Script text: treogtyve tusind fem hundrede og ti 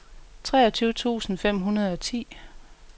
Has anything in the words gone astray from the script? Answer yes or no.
no